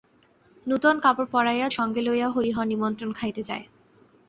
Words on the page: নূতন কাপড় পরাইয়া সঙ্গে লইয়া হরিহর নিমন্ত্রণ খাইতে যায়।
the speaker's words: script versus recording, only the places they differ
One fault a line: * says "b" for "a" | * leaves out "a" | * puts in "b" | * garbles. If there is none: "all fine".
all fine